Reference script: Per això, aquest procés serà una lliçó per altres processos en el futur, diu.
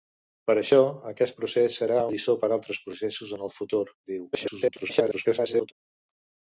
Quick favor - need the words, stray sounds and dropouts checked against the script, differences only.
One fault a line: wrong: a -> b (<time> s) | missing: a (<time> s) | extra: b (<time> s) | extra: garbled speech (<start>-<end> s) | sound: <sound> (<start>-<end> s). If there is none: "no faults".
missing: una (2.0 s)
extra: garbled speech (4.3-5.7 s)